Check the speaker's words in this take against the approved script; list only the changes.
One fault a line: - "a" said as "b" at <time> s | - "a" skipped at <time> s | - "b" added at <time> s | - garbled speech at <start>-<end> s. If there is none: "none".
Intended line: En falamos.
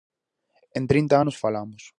- "trinta anos" added at 0.8 s